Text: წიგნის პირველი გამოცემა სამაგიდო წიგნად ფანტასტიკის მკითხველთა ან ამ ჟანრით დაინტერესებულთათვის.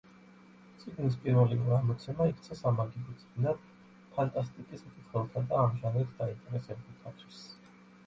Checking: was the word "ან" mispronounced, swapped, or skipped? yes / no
yes